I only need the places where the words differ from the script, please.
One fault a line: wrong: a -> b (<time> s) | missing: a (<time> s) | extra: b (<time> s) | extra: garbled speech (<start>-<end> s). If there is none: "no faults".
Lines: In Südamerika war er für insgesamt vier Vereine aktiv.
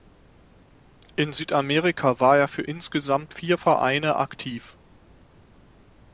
no faults